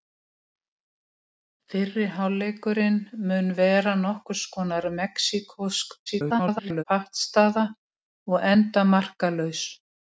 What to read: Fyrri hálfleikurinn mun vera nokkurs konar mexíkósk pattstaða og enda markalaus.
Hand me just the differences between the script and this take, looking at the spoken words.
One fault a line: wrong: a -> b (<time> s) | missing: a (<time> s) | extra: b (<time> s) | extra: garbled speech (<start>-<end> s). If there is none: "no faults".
extra: garbled speech (6.1-6.8 s)